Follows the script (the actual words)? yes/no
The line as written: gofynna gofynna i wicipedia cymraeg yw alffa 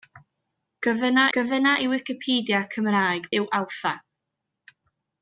yes